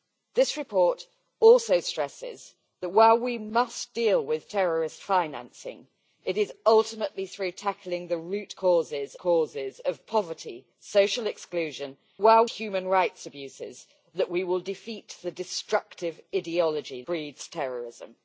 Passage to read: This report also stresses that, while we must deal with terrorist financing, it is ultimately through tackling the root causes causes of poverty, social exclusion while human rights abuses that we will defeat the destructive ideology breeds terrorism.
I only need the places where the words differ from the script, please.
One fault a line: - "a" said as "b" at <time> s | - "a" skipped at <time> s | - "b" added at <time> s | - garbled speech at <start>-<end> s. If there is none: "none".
none